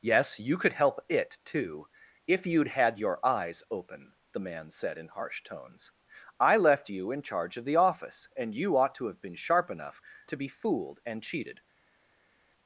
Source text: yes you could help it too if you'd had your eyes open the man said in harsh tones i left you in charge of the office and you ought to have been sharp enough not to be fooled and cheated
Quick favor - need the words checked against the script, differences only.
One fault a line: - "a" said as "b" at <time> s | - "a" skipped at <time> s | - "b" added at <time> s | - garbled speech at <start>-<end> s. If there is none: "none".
- "not" skipped at 10.0 s